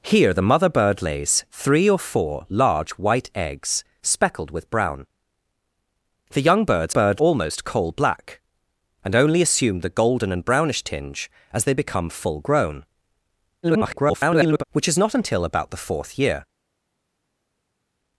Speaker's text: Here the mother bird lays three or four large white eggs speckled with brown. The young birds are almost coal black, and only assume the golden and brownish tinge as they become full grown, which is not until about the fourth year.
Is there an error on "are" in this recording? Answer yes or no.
yes